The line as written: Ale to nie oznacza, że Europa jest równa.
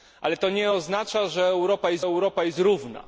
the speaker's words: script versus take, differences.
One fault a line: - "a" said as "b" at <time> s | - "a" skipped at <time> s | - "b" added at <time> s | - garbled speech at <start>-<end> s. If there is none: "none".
- "Europa jest" added at 2.0 s